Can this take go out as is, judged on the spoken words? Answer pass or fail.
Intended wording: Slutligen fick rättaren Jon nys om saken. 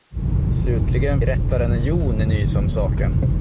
fail